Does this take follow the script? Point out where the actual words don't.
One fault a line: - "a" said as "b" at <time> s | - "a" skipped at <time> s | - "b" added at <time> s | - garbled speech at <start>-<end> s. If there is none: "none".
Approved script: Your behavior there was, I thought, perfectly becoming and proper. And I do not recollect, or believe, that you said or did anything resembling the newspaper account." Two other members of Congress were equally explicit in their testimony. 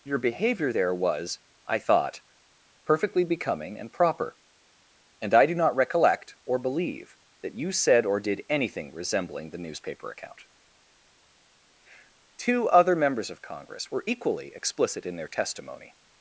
none